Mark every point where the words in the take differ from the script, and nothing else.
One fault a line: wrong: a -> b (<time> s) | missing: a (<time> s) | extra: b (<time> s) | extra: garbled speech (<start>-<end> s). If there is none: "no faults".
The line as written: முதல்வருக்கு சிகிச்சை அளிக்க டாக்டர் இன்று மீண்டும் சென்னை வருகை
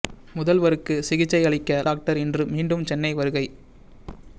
no faults